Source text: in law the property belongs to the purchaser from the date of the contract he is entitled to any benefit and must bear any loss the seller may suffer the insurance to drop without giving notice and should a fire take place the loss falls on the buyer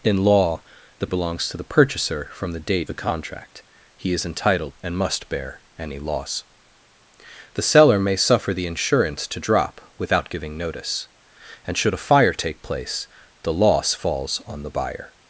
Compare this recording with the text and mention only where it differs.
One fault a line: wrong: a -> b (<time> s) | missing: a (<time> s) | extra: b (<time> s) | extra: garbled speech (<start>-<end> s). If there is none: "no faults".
missing: property (1.1 s)
missing: of (2.9 s)
missing: to any benefit (4.7 s)